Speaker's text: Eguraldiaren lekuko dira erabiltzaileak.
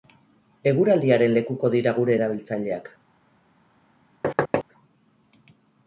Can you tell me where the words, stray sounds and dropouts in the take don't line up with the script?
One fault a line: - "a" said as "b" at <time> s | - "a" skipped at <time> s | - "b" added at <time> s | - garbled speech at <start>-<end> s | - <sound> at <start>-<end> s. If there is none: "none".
- "gure" added at 2.0 s
- thud at 4.2-4.6 s